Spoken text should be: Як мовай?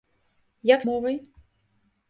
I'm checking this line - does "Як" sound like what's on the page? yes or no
yes